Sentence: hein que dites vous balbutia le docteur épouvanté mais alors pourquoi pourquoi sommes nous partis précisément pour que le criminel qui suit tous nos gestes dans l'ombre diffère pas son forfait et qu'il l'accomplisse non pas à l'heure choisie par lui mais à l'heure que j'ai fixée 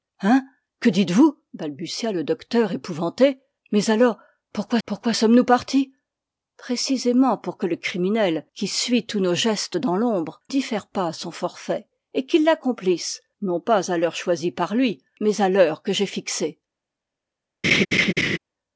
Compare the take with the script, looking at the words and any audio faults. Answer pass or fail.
fail